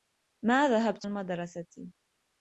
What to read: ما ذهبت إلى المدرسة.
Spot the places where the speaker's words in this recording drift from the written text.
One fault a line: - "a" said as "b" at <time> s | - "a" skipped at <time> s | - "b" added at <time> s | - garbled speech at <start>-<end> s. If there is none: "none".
- "إلى" skipped at 1.1 s